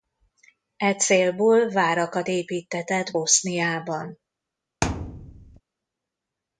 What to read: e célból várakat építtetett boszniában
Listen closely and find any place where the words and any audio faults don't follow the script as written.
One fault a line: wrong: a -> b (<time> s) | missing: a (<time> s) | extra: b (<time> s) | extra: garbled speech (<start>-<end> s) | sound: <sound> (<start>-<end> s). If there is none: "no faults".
sound: thud (4.8-5.6 s)